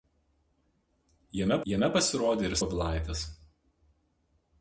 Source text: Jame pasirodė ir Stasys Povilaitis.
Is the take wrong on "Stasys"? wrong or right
wrong